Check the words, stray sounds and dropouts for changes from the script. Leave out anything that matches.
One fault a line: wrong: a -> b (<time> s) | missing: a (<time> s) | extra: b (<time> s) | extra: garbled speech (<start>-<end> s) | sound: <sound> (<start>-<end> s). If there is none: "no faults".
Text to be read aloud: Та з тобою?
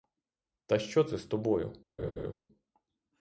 extra: що це (0.8 s)
sound: laugh (2.0-2.3 s)